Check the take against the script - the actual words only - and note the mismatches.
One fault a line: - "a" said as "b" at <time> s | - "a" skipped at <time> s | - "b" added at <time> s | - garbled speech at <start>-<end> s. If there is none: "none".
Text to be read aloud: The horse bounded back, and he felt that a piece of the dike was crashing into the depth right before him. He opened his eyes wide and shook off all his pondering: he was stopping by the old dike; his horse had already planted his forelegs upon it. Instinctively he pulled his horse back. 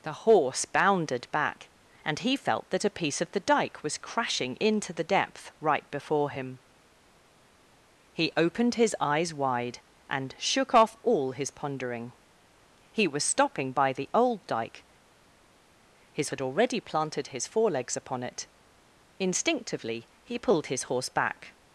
- "horse" skipped at 16.3 s